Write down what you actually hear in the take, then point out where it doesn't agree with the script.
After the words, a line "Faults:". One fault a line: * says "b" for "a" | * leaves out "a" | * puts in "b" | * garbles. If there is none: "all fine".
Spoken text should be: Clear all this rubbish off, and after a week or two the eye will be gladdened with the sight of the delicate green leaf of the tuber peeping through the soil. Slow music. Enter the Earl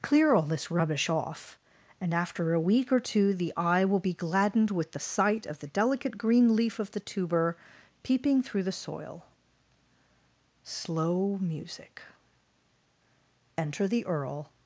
Clear all this rubbish off, and after a week or two the eye will be gladdened with the sight of the delicate green leaf of the tuber peeping through the soil. Slow music. Enter the Earl
Faults:
all fine